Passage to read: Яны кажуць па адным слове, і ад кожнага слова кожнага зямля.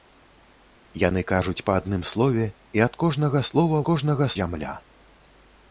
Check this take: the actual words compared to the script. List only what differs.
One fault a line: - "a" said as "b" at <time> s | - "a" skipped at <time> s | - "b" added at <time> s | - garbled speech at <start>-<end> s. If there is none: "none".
none